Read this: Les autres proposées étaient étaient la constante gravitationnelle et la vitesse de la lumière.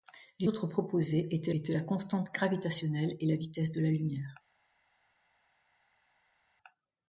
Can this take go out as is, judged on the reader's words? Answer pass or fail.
pass